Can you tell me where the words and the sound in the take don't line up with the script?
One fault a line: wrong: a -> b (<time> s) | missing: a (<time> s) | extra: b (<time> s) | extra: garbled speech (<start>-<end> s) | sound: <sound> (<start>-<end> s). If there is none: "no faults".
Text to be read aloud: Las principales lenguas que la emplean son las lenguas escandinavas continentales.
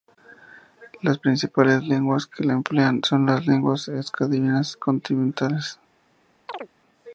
sound: chirp (6.5-6.7 s)